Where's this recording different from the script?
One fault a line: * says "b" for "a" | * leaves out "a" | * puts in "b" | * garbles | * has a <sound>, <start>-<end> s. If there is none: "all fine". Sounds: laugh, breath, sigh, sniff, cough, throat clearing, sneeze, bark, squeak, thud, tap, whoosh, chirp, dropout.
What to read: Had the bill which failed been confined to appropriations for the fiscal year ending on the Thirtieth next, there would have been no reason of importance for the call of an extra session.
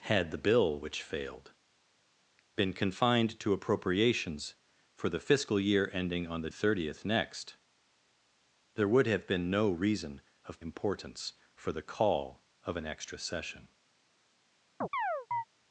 * has a chirp, 14.8-15.4 s